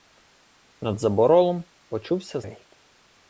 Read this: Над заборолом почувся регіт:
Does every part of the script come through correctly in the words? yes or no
yes